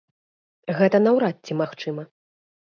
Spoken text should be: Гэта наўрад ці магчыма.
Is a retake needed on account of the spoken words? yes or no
no